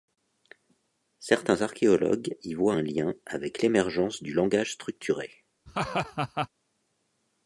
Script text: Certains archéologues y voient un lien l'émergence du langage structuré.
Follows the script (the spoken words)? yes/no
no